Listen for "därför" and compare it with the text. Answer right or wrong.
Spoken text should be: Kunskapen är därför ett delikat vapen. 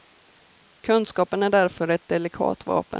right